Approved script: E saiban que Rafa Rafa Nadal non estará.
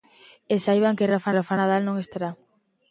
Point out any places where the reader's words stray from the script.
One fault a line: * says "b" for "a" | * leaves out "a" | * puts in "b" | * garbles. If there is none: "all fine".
all fine